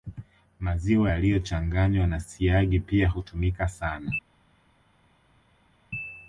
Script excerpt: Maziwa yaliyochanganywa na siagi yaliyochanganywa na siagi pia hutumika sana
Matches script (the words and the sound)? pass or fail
fail